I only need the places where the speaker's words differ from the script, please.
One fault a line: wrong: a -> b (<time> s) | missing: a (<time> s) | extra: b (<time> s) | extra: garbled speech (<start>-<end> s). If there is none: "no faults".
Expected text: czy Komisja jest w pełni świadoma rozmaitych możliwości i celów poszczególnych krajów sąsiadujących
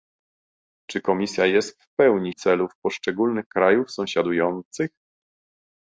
missing: świadoma rozmaitych możliwości (2.3 s)